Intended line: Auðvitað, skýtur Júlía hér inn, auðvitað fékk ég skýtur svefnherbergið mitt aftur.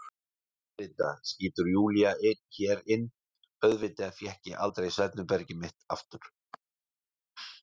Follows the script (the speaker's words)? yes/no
no